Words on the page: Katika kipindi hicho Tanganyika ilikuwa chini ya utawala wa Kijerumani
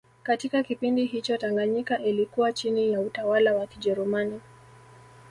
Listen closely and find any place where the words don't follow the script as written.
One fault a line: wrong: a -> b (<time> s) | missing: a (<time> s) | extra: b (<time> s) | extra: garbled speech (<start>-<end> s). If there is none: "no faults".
no faults